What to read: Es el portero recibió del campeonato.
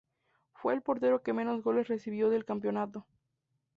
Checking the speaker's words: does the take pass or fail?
fail